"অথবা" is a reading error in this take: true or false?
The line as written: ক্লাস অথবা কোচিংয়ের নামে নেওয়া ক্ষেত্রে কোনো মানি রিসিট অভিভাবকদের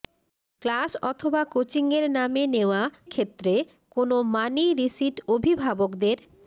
false